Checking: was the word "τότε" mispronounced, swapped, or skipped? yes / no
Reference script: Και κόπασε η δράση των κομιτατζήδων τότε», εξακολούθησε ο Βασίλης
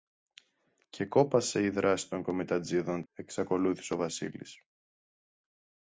yes